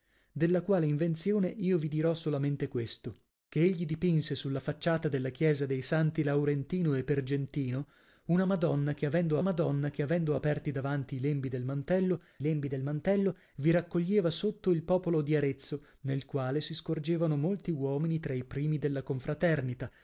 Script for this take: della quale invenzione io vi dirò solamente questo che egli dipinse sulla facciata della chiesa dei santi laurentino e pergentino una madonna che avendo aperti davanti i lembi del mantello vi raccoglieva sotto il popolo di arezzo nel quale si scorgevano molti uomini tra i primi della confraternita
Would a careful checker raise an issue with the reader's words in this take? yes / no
yes